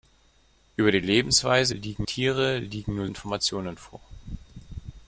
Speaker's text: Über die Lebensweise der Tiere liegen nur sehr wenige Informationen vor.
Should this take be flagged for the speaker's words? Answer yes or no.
yes